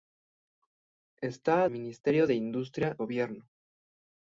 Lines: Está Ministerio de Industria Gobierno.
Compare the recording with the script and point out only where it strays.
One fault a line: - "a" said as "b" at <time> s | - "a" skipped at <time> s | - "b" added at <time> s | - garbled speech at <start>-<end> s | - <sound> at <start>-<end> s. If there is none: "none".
none